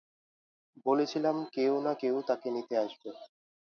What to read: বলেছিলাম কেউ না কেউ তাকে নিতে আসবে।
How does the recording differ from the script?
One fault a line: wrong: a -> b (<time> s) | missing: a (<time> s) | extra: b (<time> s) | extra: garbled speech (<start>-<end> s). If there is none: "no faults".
no faults